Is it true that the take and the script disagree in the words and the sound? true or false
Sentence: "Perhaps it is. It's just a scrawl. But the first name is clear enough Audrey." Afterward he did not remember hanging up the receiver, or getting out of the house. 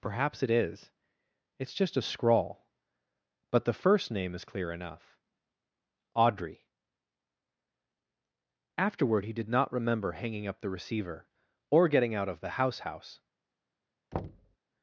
true